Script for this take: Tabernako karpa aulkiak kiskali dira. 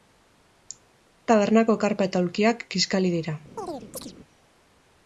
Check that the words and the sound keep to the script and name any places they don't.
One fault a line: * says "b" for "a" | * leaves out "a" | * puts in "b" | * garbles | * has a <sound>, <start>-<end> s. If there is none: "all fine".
* puts in "eta"
* has a chirp, 3.6-4.1 s